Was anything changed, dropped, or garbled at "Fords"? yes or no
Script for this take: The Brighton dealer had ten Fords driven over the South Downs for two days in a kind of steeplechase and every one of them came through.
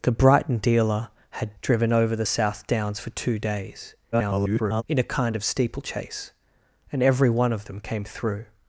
yes